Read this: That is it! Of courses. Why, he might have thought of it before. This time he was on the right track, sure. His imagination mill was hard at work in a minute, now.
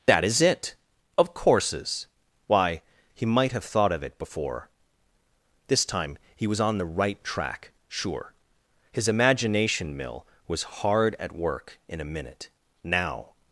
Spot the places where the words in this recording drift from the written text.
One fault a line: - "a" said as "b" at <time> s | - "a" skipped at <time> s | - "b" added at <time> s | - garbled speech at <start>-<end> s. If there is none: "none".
none